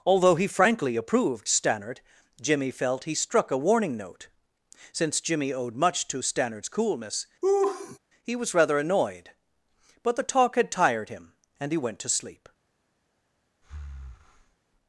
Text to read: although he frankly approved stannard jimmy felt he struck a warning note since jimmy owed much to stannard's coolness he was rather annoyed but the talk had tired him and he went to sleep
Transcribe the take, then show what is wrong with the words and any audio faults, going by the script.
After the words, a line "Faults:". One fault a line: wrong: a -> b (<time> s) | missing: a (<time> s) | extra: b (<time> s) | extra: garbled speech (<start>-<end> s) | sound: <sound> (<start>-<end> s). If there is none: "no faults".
although he frankly approved stannard jimmy felt he struck a warning note since jimmy owed much to stannard's coolness he was rather annoyed but the talk had tired him and he went to sleep
Faults:
sound: laugh (7.4-8.0 s)
sound: breath (13.6-14.6 s)